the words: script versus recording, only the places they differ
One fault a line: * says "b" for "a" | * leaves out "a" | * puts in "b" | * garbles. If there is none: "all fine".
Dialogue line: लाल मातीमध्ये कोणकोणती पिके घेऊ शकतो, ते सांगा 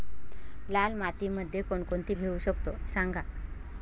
* leaves out "पिके"
* leaves out "ते"